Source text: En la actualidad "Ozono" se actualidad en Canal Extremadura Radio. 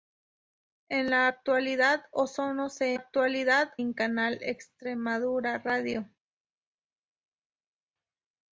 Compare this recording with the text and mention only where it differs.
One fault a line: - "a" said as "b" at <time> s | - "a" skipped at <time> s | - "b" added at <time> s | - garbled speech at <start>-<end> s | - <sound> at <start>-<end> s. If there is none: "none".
none